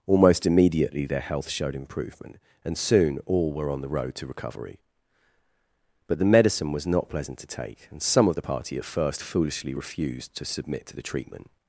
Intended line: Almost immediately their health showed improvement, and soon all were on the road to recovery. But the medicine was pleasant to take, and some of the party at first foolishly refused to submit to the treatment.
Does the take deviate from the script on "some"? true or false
false